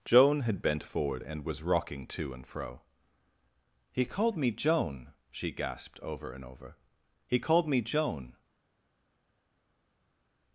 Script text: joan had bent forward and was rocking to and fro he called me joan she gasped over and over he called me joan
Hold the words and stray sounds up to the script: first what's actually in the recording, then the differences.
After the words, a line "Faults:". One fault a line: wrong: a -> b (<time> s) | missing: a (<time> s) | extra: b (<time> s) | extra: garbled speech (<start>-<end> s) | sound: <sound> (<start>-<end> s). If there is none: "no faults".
joan had bent forward and was rocking to and fro he called me joan she gasped over and over he called me joan
Faults:
no faults